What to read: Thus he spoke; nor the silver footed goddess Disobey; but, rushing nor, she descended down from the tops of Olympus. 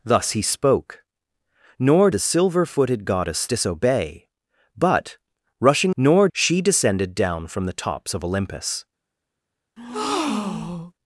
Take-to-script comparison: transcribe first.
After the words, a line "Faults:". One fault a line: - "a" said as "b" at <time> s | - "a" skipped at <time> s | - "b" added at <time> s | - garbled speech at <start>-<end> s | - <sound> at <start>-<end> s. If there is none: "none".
Thus he spoke; nor the silver footed goddess Disobey; but, rushing nor, she descended down from the tops of Olympus.
Faults:
- breath at 9.8-10.9 s